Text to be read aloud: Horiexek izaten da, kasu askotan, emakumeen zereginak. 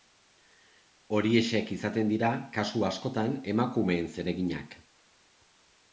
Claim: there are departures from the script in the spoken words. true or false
true